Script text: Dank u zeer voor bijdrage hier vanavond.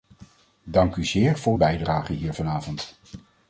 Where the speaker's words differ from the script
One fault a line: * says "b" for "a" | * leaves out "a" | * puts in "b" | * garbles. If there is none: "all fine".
all fine